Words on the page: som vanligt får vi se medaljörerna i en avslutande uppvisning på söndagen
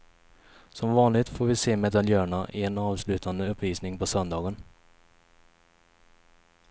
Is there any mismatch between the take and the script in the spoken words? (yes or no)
no